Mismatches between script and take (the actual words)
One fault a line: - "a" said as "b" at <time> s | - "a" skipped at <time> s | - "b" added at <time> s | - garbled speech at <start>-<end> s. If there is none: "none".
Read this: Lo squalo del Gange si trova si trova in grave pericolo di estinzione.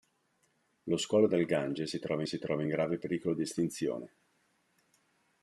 none